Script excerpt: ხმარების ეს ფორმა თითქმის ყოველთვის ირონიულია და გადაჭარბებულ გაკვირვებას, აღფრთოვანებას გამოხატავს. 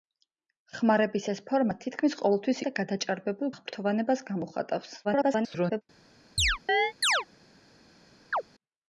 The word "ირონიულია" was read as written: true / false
false